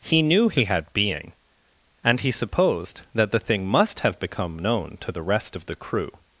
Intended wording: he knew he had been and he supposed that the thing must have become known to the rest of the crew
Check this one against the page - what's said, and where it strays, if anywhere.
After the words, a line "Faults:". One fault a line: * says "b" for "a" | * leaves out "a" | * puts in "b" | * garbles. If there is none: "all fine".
he knew he had being and he supposed that the thing must have become known to the rest of the crew
Faults:
* says "being" for "been"